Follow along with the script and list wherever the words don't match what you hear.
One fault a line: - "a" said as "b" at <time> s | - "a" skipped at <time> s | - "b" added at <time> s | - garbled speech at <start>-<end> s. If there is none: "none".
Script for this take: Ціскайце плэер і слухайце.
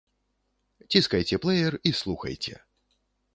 none